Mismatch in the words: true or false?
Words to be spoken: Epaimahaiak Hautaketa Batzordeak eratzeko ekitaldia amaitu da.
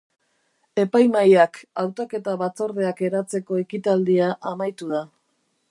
false